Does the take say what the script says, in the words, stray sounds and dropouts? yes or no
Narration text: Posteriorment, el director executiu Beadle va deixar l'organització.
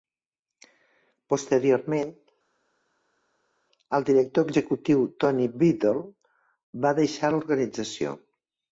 no